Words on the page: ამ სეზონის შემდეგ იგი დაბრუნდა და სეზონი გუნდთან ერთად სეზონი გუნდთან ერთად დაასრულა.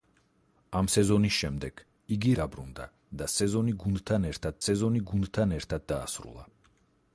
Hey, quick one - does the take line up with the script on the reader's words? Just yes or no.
yes